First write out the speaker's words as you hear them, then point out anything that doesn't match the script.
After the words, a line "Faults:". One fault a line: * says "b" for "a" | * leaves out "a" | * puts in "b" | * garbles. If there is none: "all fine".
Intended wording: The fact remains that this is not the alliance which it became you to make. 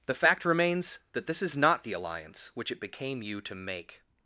The fact remains that this is not the alliance which it became you to make.
Faults:
all fine